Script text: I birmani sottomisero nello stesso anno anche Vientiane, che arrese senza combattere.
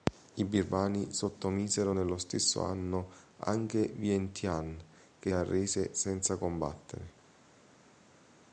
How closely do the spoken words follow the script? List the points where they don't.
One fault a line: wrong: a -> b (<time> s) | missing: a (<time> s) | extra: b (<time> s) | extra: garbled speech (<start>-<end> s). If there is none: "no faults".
no faults